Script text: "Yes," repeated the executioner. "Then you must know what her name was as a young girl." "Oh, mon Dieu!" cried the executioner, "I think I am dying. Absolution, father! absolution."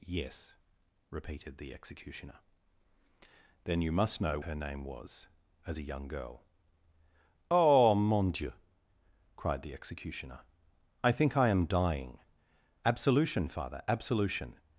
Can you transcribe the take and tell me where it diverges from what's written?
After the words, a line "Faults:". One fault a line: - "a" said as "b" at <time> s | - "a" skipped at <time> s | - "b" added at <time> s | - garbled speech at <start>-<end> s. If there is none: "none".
"Yes," repeated the executioner. "Then you must know her name was as a young girl." "Oh, mon Dieu!" cried the executioner, "I think I am dying. Absolution, father! absolution."
Faults:
- "what" skipped at 4.4 s